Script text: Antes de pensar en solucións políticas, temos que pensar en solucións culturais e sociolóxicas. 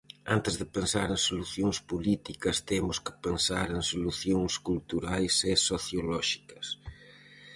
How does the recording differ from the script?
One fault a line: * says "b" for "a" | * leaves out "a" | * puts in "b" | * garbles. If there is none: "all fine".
all fine